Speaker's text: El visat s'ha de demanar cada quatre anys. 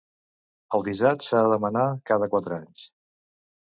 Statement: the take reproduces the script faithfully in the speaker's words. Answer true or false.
true